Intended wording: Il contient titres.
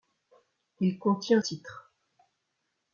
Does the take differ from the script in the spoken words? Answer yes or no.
no